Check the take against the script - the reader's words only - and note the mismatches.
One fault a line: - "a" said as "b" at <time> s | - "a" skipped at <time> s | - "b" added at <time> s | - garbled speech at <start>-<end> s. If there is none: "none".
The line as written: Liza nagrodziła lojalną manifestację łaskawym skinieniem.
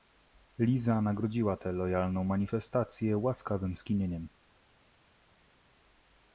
- "tę" added at 1.6 s